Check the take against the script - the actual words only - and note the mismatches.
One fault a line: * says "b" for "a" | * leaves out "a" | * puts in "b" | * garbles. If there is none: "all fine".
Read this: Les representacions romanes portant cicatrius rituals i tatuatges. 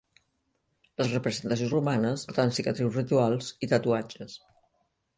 all fine